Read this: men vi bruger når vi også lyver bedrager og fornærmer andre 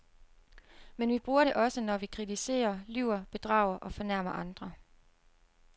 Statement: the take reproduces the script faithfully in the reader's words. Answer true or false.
false